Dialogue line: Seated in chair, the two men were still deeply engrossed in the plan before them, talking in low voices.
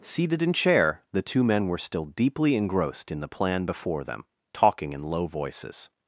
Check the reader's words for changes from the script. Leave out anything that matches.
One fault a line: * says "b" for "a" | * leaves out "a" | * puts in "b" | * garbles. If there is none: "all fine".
all fine